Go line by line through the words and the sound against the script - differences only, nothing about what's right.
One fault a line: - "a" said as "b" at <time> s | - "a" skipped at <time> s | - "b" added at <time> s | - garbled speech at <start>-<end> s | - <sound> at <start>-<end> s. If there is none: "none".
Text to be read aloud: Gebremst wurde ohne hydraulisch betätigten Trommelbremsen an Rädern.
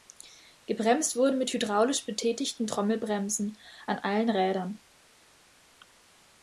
- "ohne" said as "mit" at 1.4 s
- "allen" added at 4.0 s